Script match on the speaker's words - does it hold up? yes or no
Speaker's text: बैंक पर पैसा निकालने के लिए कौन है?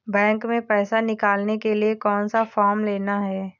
no